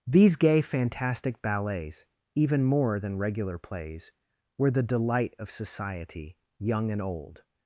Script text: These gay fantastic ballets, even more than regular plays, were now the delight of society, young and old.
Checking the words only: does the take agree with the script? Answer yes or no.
no